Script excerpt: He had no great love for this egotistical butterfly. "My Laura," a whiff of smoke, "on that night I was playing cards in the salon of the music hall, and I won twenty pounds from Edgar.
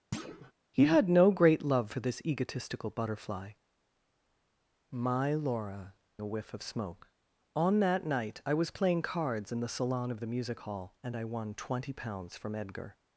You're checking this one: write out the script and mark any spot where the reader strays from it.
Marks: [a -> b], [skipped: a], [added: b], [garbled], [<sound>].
[thud] He had no great love for this egotistical butterfly. "My Laura," a whiff of smoke, "on that night I was playing cards in the salon of the music hall, and I won twenty pounds from Edgar.